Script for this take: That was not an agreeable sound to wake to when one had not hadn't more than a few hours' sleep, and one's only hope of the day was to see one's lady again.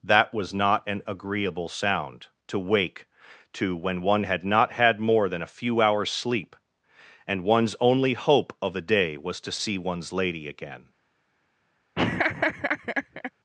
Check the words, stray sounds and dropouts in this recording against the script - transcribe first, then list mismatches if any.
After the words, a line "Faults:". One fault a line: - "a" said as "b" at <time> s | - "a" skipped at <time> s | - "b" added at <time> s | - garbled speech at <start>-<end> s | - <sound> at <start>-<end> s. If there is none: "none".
That was not an agreeable sound to wake to when one had not had more than a few hours' sleep, and one's only hope of the day was to see one's lady again.
Faults:
- "hadn't" said as "had" at 4.7 s
- laugh at 11.9-13.3 s